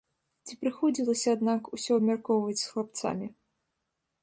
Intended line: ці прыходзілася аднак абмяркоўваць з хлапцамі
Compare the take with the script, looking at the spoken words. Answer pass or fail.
fail